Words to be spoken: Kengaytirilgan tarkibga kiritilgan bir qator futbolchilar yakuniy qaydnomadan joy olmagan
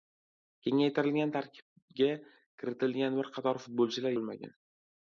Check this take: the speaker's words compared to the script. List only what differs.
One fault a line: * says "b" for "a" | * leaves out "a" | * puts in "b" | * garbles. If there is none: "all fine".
* leaves out "yakuniy qaydnomadan joy"